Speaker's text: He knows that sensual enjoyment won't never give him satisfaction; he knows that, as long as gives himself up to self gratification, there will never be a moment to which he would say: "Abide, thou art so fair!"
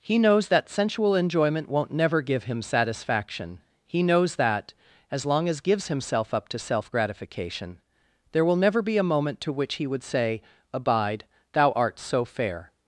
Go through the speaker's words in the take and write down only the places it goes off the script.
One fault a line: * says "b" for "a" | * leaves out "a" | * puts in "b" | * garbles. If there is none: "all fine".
all fine